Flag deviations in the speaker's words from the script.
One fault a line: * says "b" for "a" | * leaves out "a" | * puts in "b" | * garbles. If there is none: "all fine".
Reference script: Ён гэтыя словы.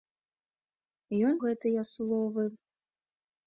all fine